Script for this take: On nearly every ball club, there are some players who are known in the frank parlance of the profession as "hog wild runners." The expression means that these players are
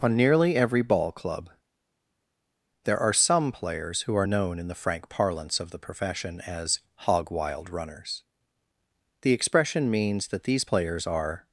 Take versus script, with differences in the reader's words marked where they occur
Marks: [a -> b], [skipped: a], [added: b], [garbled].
On nearly every ball club, there are some players who are known in the frank parlance of the profession as "hog wild runners." The expression means that these players are